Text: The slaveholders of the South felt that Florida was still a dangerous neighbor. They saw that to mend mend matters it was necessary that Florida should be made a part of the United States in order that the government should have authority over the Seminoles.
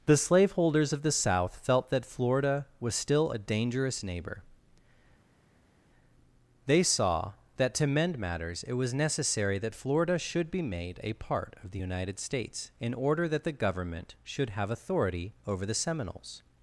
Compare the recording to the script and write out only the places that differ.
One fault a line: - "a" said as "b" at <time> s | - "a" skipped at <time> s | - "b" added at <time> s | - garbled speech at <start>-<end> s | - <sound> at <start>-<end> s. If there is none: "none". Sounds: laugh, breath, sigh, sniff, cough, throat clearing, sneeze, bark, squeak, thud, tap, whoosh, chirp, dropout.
- "mend" skipped at 8.2 s